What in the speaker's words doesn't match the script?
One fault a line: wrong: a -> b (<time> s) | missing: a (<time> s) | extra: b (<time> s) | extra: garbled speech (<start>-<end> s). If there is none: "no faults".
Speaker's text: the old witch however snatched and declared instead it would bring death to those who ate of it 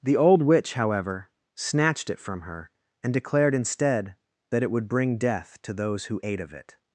extra: it from her (2.1 s)
extra: that (4.5 s)